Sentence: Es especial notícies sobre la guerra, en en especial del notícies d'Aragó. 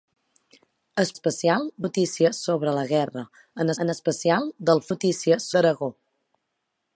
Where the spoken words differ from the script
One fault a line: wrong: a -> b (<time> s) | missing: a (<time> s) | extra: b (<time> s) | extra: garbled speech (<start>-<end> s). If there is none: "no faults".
no faults